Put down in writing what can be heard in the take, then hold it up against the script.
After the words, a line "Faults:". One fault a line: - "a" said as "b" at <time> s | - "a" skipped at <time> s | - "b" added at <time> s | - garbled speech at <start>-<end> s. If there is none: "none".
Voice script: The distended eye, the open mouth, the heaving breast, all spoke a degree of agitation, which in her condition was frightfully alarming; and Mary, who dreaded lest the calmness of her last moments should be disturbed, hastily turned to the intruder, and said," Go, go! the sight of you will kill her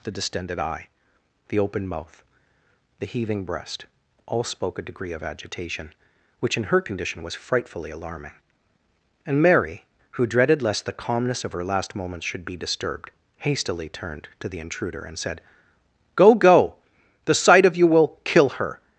The distended eye, the open mouth, the heaving breast, all spoke a degree of agitation, which in her condition was frightfully alarming; and Mary, who dreaded lest the calmness of her last moments should be disturbed, hastily turned to the intruder, and said," Go, go! the sight of you will kill her
Faults:
none